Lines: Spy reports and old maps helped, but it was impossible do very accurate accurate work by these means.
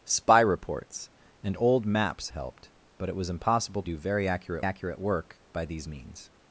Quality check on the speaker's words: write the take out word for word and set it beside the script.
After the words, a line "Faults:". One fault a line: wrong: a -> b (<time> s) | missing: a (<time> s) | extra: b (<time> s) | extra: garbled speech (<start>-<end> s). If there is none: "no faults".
Spy reports and old maps helped, but it was impossible do very accurate accurate work by these means.
Faults:
no faults